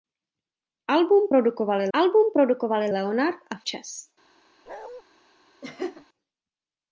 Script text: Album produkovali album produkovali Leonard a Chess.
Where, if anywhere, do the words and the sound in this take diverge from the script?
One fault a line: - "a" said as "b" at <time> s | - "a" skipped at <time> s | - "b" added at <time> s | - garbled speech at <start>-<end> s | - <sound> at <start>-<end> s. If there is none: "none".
- bark at 4.7-5.0 s
- laugh at 5.6-6.1 s